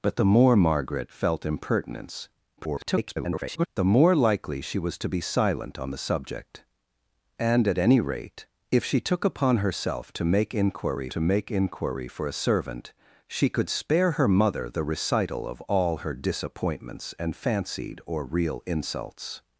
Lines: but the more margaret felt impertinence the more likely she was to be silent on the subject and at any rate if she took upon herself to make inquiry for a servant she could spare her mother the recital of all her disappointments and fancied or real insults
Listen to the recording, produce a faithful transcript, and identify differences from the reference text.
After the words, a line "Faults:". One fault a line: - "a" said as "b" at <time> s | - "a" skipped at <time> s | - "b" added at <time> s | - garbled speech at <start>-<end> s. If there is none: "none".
but the more margaret felt impertinence [garbled] the more likely she was to be silent on the subject and at any rate if she took upon herself to make inquiry to make inquiry for a servant she could spare her mother the recital of all her disappointments and fancied or real insults
Faults:
- garbled speech at 2.6-3.7 s
- "to make inquiry" added at 11.1 s